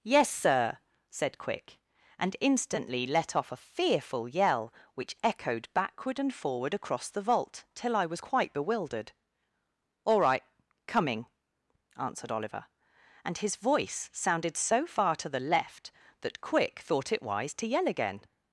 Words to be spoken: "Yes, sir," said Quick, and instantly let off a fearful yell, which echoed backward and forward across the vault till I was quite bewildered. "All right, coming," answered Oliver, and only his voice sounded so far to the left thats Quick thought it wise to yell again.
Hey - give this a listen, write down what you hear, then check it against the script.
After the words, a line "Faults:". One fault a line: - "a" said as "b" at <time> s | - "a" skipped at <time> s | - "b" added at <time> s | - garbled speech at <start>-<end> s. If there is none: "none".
"Yes, sir," said Quick, and instantly let off a fearful yell, which echoed backward and forward across the vault till I was quite bewildered. "All right, coming," answered Oliver, and his voice sounded so far to the left that Quick thought it wise to yell again.
Faults:
- "only" skipped at 13.4 s
- "thats" said as "that" at 16.2 s